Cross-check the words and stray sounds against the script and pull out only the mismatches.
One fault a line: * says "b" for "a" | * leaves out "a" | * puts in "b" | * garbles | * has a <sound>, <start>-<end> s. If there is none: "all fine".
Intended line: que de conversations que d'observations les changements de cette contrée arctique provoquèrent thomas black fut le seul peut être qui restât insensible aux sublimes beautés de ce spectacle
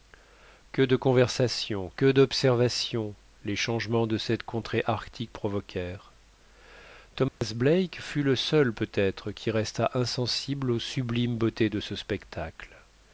* has a dropout, 7.3-7.4 s